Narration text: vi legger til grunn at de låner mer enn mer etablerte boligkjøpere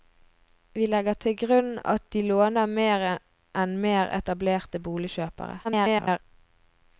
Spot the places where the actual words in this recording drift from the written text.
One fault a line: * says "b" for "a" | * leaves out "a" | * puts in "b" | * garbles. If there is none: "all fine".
* garbles